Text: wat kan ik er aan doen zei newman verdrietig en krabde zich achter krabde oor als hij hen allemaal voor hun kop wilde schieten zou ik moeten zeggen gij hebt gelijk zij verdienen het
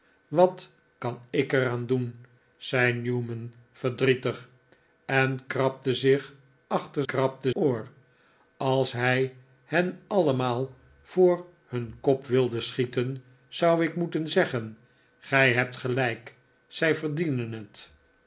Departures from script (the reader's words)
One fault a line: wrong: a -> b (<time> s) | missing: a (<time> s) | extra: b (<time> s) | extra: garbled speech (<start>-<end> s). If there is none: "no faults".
no faults